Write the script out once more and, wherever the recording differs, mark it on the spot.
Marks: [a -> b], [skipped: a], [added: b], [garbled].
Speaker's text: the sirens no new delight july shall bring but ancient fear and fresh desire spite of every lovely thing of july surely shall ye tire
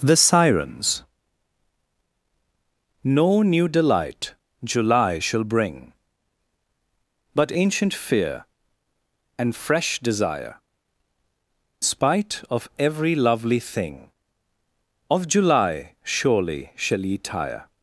the sirens no new delight july shall bring but ancient fear and fresh desire spite of every lovely thing of july surely shall ye tire